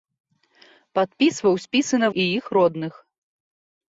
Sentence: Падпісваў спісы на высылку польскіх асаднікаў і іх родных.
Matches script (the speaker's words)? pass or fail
fail